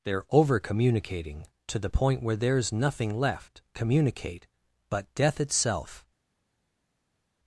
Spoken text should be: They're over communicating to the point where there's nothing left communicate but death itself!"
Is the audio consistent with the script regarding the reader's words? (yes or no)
yes